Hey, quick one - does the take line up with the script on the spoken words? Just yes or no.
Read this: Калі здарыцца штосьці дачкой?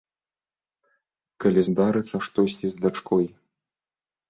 no